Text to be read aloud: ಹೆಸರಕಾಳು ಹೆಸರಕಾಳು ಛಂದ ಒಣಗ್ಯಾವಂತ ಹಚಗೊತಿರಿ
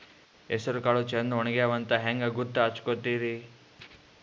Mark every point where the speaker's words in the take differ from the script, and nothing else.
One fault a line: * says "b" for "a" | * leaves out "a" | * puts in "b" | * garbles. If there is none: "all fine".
* leaves out "ಹೆಸರಕಾಳು"
* puts in "ಹಂಗ ಗೂತ್ತ"